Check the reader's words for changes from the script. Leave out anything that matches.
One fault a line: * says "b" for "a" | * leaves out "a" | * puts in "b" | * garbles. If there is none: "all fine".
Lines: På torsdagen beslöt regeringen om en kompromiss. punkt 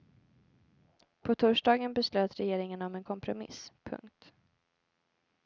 all fine